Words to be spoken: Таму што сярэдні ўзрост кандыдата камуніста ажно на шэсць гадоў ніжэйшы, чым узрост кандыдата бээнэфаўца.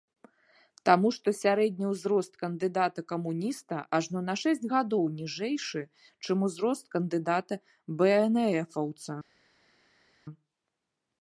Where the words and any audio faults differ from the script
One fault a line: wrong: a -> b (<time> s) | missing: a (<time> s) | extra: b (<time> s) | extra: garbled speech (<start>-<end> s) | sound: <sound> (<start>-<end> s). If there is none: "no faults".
no faults